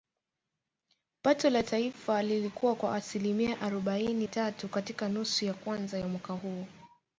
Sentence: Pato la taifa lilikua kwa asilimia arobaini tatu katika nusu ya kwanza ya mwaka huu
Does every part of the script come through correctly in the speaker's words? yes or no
yes